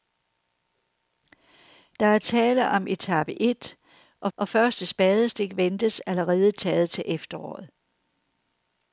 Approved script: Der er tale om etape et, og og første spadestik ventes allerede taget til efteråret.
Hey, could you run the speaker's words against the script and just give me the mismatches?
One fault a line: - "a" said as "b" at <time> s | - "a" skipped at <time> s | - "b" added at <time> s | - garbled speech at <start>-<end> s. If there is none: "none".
none